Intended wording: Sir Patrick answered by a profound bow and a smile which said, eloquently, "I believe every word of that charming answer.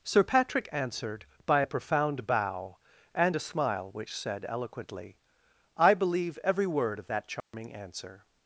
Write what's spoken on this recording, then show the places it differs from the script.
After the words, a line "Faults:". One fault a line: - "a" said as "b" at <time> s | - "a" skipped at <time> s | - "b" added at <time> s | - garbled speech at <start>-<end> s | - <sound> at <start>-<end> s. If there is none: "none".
Sir Patrick answered by a profound bow and a smile which said, eloquently, "I believe every word of that charming answer.
Faults:
- dropout at 7.4-7.5 s